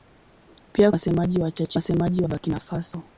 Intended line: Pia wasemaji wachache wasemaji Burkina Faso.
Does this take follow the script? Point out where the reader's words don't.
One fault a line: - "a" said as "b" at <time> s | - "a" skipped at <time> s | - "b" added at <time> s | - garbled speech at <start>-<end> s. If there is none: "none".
none